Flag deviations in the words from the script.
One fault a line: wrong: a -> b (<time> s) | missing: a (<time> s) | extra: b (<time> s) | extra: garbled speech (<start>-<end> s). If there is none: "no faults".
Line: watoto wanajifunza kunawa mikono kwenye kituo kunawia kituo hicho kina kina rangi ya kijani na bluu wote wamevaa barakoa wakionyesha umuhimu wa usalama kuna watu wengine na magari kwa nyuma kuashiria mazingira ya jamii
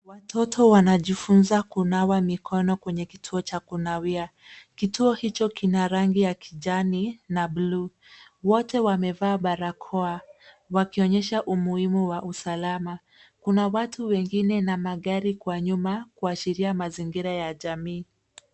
extra: cha (3.4 s)
missing: kina (5.9 s)